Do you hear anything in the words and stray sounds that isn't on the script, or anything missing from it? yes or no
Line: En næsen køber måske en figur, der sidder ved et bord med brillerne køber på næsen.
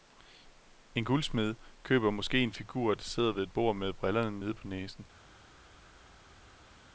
yes